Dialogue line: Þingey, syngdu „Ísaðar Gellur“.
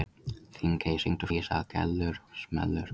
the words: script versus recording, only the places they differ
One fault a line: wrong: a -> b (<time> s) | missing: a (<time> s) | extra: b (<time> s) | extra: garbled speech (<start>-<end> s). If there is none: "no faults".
no faults